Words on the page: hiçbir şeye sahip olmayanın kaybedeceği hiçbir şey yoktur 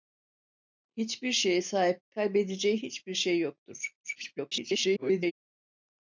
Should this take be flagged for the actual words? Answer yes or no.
yes